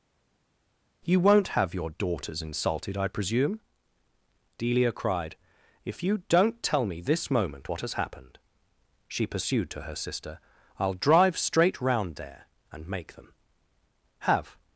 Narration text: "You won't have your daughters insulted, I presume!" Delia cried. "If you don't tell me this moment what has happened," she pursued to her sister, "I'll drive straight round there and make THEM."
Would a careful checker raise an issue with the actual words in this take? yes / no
yes